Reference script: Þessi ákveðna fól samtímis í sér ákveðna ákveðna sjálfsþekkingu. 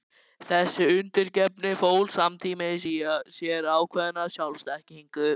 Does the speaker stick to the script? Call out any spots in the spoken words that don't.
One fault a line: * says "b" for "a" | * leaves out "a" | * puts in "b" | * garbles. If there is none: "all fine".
* says "undirgefni" for "ákveðna"
* leaves out "ákveðna"